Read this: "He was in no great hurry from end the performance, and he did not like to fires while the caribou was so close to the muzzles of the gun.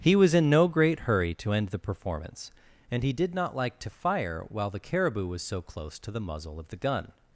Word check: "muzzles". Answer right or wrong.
wrong